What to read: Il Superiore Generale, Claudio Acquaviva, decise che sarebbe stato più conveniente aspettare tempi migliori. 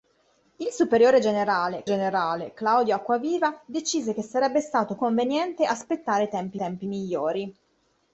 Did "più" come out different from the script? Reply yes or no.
yes